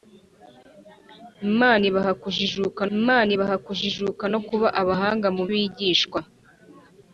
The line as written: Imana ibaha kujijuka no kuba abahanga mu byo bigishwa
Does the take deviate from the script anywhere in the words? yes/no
yes